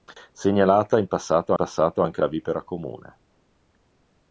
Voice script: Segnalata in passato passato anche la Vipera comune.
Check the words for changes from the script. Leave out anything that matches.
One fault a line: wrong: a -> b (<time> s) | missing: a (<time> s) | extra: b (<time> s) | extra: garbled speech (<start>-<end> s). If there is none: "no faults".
no faults